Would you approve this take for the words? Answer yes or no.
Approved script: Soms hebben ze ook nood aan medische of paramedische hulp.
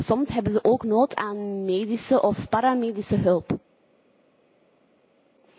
yes